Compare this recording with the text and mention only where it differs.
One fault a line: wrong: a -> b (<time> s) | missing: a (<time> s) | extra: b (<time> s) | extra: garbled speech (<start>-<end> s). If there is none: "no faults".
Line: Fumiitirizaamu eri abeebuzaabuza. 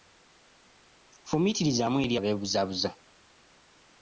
no faults